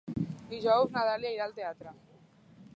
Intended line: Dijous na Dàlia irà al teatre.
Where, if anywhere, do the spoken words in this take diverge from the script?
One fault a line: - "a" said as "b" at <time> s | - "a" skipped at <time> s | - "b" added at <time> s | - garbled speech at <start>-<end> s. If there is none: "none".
none